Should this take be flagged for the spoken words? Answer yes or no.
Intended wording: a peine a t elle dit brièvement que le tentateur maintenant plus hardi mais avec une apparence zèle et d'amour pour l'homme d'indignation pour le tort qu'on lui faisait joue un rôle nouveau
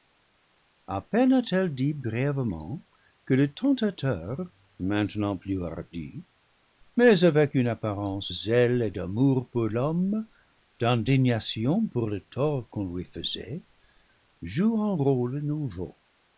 no